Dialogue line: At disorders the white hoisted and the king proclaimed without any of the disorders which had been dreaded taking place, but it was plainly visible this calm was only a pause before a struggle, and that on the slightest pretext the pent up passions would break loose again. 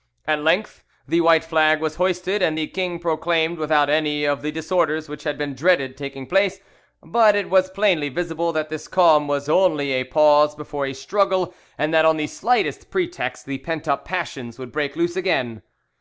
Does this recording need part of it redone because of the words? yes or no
yes